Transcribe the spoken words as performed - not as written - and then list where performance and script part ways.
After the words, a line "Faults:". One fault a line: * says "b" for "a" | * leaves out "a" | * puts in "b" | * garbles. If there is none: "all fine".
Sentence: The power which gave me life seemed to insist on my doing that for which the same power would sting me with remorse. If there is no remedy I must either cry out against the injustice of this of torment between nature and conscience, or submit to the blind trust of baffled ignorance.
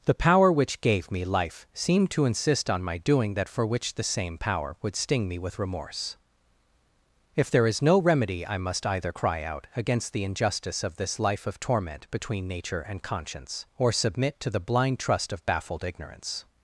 The power which gave me life seemed to insist on my doing that for which the same power would sting me with remorse. If there is no remedy I must either cry out against the injustice of this life of torment between nature and conscience, or submit to the blind trust of baffled ignorance.
Faults:
* puts in "life"